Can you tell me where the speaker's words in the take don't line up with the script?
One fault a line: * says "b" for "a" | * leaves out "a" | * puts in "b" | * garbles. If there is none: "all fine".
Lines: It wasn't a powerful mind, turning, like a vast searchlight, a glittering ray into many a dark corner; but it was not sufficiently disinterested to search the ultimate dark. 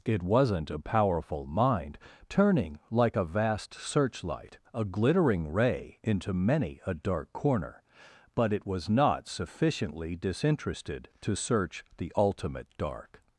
all fine